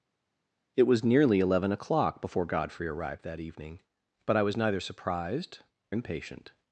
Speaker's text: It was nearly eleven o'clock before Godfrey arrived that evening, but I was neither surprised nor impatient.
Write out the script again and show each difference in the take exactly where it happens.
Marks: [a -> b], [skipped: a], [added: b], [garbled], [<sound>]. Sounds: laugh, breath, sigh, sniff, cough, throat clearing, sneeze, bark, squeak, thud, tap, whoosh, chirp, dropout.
It was nearly eleven o'clock before Godfrey arrived that evening, but I was neither surprised [skipped: nor] impatient.